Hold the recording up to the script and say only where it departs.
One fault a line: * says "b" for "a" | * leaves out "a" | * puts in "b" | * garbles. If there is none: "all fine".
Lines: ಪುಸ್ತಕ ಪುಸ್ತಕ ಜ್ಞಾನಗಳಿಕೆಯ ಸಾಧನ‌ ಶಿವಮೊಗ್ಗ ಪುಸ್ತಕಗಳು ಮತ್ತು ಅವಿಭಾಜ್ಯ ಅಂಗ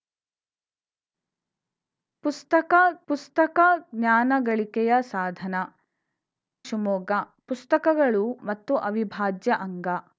all fine